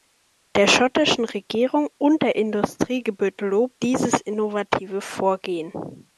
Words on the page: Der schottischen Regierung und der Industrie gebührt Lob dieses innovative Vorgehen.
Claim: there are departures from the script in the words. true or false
false